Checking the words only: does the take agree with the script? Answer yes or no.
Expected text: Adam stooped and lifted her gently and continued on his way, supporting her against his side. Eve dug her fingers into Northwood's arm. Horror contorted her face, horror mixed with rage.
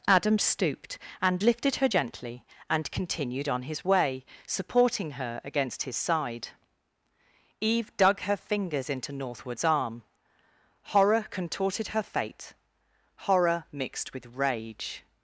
no